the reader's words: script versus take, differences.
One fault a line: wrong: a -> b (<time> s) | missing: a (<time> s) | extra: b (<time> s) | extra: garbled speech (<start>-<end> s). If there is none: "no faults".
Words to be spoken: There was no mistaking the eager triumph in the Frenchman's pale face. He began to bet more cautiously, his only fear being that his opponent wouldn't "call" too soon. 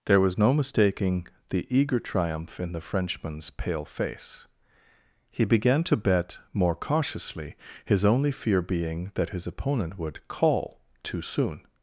wrong: wouldn't -> would (10.0 s)